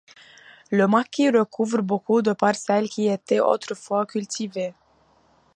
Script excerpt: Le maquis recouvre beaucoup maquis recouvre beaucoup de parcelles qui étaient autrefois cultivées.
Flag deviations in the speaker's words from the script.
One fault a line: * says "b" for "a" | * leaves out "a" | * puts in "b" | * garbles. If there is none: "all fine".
* leaves out "maquis recouvre beaucoup"